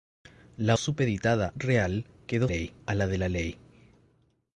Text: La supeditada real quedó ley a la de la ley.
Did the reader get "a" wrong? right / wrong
right